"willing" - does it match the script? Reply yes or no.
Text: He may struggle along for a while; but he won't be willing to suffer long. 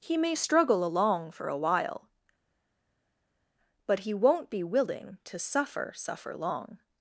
yes